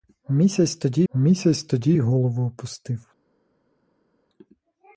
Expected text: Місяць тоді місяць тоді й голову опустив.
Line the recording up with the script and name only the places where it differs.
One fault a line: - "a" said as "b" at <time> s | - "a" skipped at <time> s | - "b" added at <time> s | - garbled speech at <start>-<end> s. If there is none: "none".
none